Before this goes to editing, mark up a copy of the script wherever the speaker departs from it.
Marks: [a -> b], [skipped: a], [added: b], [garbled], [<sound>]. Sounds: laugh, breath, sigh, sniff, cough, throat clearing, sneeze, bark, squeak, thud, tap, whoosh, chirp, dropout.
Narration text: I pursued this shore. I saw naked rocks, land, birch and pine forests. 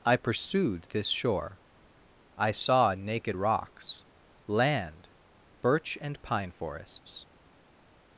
I pursued this shore. I saw naked rocks, land, birch and pine forests.